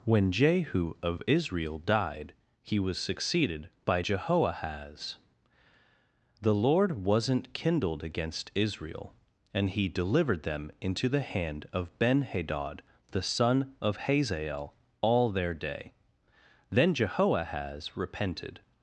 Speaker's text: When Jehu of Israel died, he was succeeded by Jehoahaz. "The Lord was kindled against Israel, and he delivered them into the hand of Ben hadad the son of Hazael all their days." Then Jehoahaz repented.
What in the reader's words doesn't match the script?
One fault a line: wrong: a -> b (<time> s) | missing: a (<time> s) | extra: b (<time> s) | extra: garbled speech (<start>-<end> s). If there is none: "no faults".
wrong: was -> wasn't (7.0 s)
wrong: days -> day (15.5 s)